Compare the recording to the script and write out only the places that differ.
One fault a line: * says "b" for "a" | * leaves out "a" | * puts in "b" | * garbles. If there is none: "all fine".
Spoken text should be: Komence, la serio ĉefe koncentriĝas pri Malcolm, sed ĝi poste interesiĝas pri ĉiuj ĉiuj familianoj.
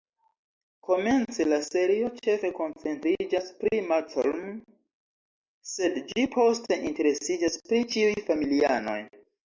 * leaves out "ĉiuj"